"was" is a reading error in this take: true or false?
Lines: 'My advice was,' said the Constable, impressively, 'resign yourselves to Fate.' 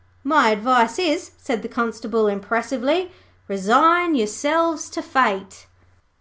true